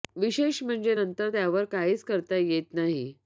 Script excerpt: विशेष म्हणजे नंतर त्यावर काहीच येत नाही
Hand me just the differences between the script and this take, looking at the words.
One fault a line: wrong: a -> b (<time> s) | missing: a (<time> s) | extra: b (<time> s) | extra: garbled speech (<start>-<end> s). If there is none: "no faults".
extra: करता (2.0 s)